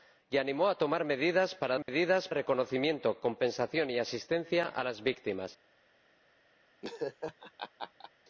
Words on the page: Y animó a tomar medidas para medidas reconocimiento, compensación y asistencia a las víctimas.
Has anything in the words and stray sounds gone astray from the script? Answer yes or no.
yes